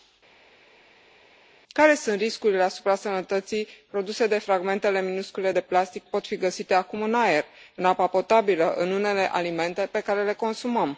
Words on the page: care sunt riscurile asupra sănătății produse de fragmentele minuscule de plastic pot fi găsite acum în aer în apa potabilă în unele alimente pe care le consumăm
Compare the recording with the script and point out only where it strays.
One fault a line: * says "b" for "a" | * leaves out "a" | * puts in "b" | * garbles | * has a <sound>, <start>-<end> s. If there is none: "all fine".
all fine